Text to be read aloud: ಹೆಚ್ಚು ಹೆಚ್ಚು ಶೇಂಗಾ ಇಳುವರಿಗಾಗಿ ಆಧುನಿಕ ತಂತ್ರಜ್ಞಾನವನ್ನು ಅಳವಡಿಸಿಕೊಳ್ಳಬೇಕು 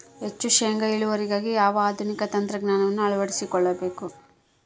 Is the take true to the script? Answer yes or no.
no